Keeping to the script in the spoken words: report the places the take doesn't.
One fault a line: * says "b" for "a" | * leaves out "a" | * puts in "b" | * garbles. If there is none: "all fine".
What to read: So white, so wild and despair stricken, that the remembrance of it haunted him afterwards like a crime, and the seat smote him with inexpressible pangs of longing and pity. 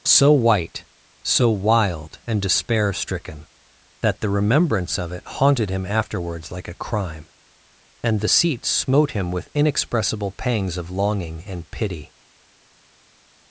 all fine